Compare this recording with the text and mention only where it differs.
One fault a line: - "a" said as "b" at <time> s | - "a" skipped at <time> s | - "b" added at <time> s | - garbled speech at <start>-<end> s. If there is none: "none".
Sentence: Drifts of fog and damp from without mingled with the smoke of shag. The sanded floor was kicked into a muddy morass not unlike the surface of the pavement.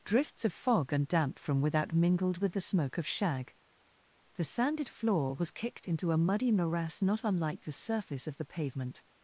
none